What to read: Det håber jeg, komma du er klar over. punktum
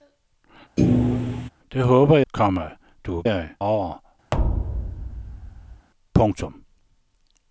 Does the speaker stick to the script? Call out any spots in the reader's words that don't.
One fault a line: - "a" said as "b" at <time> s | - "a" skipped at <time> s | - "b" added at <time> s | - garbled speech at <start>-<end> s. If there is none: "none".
- "jeg" skipped at 2.2 s
- "klar" said as "jeg" at 3.2 s